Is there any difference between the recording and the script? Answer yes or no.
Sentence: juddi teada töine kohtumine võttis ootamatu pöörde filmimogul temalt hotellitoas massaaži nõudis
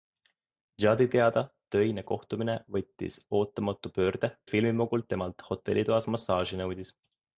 no